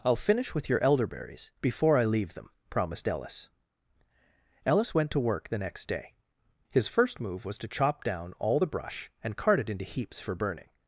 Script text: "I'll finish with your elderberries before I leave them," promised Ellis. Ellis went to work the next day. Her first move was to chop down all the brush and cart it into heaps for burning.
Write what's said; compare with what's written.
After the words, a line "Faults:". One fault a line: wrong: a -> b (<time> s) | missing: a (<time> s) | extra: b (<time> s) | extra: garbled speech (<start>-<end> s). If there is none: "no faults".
"I'll finish with your elderberries before I leave them," promised Ellis. Ellis went to work the next day. His first move was to chop down all the brush and cart it into heaps for burning.
Faults:
wrong: Her -> His (6.7 s)